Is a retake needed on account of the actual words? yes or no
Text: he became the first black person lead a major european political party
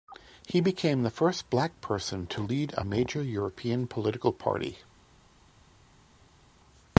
yes